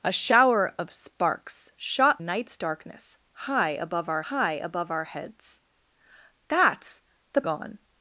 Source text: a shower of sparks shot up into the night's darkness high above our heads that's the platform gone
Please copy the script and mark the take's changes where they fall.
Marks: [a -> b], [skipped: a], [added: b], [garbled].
a shower of sparks shot [up into the night's darkness -> night's darkness high above our] high above our heads that's the [skipped: platform] gone